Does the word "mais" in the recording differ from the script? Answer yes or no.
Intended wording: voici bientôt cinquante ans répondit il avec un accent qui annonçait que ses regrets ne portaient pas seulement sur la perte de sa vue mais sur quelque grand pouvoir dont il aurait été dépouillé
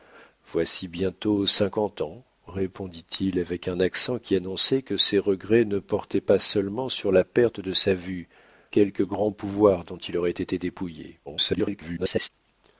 yes